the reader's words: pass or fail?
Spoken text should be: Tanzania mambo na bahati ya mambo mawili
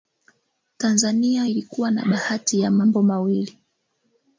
fail